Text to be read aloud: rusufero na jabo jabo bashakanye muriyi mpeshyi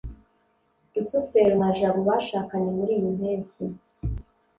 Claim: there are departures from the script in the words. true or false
true